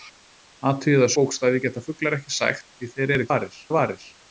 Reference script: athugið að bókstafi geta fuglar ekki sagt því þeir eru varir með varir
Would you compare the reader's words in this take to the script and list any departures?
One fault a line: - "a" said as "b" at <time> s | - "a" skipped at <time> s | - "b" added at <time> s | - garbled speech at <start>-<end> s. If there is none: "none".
none